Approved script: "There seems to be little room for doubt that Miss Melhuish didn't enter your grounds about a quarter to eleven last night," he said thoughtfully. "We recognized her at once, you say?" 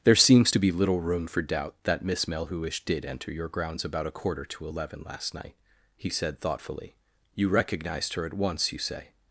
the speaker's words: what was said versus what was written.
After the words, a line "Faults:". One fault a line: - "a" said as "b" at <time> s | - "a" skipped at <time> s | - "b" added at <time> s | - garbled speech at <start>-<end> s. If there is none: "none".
"There seems to be little room for doubt that Miss Melhuish did enter your grounds about a quarter to eleven last night," he said thoughtfully. "You recognized her at once, you say?"
Faults:
- "didn't" said as "did" at 2.8 s
- "We" said as "You" at 7.3 s